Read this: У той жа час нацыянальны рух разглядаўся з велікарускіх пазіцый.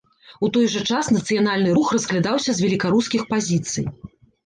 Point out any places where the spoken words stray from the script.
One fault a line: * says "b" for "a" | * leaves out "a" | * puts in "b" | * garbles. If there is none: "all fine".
all fine